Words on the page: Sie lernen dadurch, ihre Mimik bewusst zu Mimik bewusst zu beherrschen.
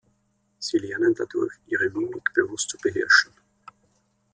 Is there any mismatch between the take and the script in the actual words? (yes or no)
yes